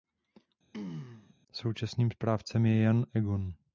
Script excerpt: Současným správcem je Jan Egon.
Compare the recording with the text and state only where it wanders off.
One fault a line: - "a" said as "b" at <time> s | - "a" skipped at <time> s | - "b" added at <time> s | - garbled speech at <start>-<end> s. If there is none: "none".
none